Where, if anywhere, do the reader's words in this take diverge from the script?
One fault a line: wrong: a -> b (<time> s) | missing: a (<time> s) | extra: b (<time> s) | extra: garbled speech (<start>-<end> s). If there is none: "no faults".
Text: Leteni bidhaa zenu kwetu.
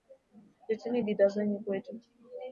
no faults